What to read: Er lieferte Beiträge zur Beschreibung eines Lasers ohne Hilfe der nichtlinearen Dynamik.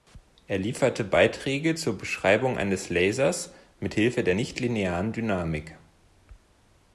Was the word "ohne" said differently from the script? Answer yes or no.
yes